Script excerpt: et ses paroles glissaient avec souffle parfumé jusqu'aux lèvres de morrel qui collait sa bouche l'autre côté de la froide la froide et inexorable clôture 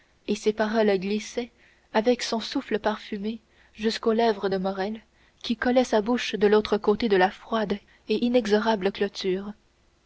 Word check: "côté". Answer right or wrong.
right